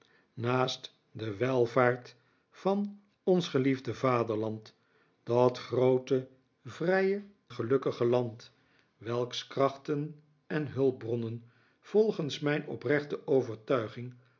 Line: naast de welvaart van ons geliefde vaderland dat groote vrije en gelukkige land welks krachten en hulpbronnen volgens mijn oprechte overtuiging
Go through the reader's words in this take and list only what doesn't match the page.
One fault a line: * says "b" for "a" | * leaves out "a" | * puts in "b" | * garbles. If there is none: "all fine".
* leaves out "en"